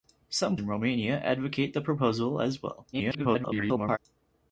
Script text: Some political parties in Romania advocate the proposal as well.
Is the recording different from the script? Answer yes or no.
yes